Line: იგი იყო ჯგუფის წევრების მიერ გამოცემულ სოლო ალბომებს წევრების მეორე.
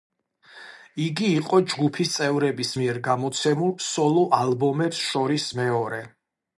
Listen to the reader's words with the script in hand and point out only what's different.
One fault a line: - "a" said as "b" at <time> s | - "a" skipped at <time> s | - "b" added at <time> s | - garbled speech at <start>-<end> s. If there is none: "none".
- "წევრების" said as "შორის" at 5.1 s